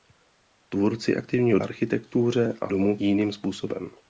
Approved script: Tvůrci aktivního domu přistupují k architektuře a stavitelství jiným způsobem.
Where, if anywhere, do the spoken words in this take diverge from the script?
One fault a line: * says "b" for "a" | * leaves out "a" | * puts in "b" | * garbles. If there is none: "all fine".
* leaves out "domu přistupují k"
* says "domu" for "stavitelství"